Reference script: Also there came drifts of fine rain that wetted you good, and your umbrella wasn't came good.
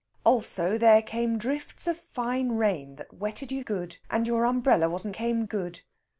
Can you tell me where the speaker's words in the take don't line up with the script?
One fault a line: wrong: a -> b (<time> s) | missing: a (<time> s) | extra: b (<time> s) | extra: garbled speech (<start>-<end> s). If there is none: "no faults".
no faults